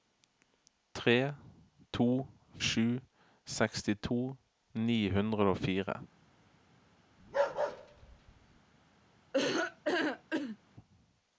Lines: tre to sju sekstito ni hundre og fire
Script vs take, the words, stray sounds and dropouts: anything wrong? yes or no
yes